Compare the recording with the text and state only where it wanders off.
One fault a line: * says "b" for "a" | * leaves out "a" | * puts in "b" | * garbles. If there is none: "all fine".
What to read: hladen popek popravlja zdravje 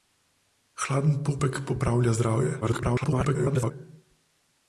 * garbles